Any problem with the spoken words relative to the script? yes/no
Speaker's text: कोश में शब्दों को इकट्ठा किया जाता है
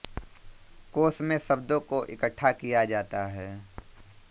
no